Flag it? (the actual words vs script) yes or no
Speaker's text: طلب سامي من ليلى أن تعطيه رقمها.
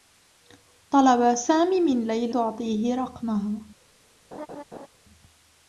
yes